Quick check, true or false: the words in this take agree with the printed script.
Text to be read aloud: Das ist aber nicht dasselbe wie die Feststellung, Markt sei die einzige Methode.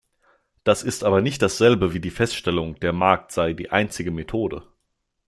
false